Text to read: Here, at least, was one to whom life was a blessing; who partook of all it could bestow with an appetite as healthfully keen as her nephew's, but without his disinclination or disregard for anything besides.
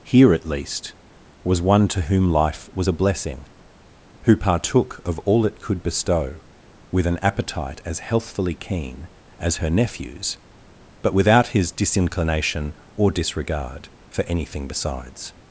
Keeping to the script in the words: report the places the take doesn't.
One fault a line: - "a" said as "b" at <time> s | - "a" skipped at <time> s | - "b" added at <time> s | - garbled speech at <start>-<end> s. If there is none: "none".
none